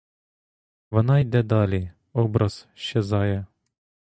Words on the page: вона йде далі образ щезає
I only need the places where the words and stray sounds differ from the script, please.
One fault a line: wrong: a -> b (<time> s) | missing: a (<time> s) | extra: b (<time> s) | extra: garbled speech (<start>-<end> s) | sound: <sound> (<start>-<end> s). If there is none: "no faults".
no faults